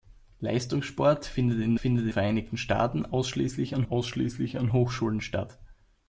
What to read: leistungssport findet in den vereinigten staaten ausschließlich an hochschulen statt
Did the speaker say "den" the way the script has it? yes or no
no